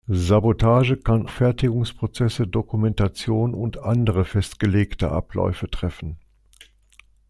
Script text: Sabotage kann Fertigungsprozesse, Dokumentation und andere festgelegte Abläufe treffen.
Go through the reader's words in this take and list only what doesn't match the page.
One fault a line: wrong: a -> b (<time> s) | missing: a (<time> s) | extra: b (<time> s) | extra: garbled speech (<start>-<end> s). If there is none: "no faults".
no faults